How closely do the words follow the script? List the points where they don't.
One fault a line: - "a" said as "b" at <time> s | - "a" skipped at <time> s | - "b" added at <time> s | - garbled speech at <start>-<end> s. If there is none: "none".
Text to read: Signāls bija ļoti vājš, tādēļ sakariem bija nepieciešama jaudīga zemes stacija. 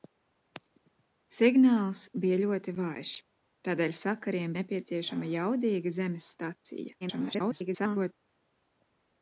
- "bija" skipped at 4.5 s
- garbled speech at 7.0-8.1 s